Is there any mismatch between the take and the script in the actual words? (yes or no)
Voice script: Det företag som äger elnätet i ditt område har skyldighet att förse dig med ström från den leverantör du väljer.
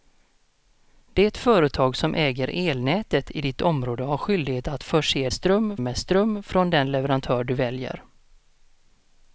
yes